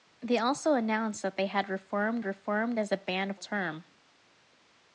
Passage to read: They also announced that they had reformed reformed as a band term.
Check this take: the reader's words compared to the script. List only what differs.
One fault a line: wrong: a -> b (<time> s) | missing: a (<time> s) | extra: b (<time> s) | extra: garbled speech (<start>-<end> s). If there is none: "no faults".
no faults